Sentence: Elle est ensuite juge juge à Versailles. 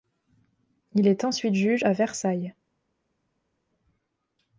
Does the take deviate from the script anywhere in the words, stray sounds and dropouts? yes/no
yes